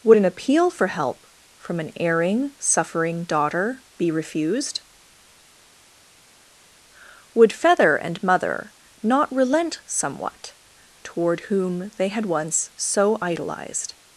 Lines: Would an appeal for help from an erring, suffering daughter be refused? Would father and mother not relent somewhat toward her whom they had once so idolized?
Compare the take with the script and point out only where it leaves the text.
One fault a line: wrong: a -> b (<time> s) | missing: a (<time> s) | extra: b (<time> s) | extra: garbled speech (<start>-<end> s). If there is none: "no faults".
wrong: father -> feather (7.5 s)
missing: her (11.4 s)